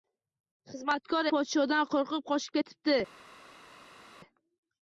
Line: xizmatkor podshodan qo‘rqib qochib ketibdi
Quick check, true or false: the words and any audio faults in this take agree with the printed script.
true